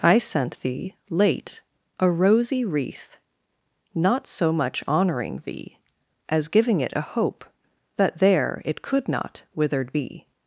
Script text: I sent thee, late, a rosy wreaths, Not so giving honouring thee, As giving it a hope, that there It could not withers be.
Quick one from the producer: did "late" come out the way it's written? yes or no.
yes